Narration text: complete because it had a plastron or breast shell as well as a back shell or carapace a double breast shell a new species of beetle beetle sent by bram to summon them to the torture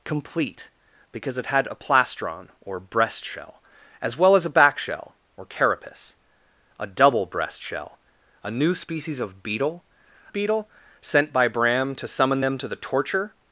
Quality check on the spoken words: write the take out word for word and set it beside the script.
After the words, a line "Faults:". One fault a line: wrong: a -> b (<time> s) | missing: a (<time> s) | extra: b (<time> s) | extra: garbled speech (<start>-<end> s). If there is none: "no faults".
complete because it had a plastron or breast shell as well as a back shell or carapace a double breast shell a new species of beetle beetle sent by bram to summon them to the torture
Faults:
no faults